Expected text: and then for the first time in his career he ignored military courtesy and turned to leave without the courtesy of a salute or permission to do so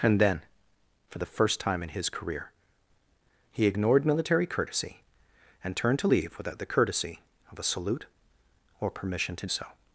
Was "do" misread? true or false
true